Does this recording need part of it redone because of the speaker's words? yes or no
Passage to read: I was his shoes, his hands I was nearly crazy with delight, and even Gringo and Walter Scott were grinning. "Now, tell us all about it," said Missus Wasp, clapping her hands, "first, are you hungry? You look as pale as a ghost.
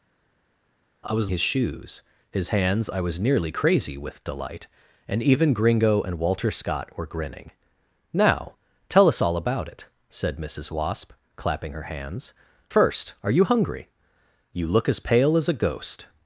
no